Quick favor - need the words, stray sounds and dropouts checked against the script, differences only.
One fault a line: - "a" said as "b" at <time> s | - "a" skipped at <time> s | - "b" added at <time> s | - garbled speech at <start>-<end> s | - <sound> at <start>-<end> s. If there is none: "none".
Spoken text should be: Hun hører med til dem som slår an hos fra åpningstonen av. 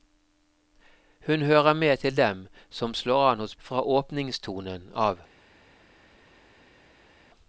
none